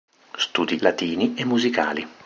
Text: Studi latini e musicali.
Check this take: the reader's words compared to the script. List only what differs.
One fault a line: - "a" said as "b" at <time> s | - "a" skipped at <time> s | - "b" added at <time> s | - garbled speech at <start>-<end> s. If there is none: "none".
none